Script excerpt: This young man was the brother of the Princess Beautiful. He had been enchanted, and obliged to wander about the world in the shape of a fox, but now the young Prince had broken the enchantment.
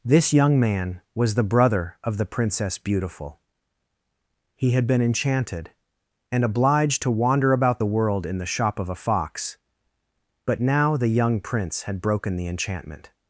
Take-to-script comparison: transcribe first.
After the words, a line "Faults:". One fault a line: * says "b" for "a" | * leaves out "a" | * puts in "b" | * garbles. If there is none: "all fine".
This young man was the brother of the Princess Beautiful. He had been enchanted, and obliged to wander about the world in the shop of a fox, but now the young Prince had broken the enchantment.
Faults:
* says "shop" for "shape"